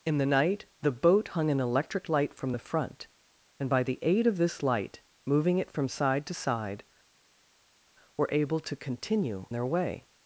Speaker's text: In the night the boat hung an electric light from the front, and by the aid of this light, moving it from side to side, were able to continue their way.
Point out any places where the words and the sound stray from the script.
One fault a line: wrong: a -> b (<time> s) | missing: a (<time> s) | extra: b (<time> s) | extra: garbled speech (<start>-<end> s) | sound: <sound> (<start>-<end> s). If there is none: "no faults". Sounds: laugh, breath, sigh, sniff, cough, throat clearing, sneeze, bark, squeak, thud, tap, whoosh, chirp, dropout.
no faults